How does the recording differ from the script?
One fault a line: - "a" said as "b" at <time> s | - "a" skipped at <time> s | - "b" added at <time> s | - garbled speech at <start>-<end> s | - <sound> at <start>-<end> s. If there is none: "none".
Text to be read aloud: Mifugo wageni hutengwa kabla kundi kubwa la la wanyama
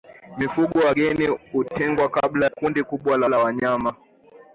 none